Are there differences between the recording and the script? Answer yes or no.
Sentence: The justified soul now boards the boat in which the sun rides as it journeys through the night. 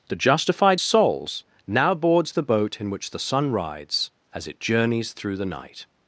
yes